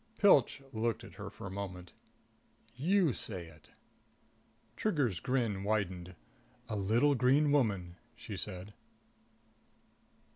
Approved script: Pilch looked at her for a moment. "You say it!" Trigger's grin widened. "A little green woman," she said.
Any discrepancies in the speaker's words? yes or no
no